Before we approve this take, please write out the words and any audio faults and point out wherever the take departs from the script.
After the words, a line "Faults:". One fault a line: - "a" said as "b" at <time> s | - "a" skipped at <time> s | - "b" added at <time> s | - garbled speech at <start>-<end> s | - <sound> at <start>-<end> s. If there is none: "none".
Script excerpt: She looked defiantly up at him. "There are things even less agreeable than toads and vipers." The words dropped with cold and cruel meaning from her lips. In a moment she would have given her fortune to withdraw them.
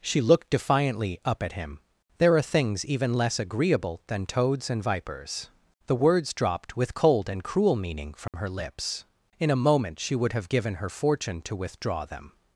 She looked defiantly up at him. "There are things even less agreeable than toads and vipers." The words dropped with cold and cruel meaning from her lips. In a moment she would have given her fortune to withdraw them.
Faults:
- dropout at 8.3-8.3 s